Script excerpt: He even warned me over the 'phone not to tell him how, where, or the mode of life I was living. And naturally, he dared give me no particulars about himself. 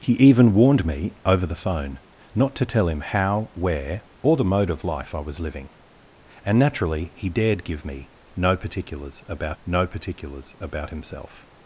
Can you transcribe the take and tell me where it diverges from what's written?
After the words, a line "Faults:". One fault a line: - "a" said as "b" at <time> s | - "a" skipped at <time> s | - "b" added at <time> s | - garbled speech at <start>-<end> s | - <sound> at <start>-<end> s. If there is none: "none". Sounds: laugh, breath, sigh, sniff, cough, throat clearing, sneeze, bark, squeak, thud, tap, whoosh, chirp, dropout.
He even warned me over the 'phone not to tell him how, where, or the mode of life I was living. And naturally, he dared give me no particulars about no particulars about himself.
Faults:
- "no particulars about" added at 9.6 s